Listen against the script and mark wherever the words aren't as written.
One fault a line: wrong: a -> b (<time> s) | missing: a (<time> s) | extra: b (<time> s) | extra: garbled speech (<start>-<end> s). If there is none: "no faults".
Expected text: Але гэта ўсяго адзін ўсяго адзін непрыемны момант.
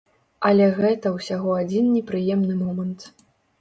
missing: ўсяго адзін (1.9 s)